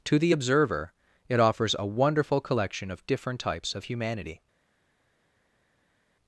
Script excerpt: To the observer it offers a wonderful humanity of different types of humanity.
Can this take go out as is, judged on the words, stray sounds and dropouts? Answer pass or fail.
fail